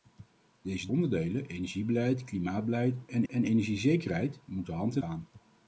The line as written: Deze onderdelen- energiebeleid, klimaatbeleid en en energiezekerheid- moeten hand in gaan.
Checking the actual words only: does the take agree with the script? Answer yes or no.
yes